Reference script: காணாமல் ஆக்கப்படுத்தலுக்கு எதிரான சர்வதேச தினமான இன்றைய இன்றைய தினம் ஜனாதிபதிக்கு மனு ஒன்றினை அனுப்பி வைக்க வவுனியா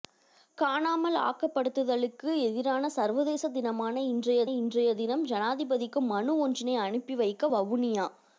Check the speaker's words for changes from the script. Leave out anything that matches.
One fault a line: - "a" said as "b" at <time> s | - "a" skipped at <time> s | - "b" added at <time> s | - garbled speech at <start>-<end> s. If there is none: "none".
none